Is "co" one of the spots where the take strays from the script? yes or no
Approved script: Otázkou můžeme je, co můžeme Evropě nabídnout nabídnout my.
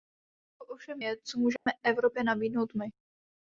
no